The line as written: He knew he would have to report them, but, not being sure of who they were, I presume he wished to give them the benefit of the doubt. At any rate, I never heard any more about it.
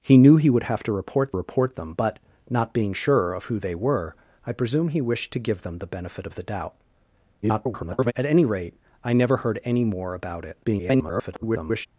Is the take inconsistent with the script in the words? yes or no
yes